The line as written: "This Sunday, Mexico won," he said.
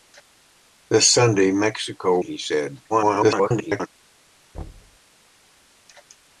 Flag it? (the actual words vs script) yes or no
yes